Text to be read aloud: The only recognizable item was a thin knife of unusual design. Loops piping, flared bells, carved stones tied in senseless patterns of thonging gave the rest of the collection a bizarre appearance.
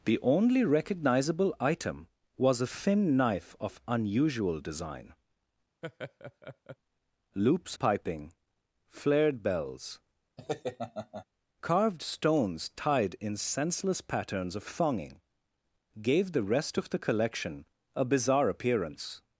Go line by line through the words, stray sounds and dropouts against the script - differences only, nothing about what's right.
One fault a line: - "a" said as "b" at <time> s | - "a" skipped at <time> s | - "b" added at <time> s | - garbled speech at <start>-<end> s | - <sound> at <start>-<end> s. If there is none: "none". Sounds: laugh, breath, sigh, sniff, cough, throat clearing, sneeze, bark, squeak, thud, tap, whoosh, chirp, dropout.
- laugh at 5.8-6.8 s
- laugh at 10.4-11.3 s